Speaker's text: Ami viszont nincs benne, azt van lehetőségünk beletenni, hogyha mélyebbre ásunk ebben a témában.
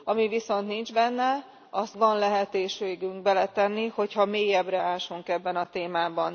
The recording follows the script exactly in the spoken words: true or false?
true